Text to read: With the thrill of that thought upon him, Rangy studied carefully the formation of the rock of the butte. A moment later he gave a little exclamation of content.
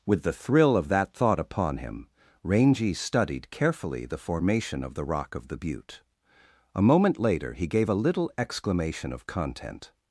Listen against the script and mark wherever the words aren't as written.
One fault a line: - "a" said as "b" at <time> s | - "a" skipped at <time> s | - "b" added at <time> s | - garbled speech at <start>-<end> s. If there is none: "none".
none